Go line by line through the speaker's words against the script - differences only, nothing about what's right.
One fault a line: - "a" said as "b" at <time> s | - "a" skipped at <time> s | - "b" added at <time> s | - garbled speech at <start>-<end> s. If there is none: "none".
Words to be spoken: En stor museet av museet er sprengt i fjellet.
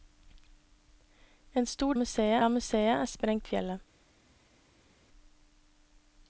none